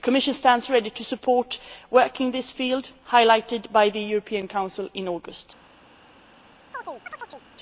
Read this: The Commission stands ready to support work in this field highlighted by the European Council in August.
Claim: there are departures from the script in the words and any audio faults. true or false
true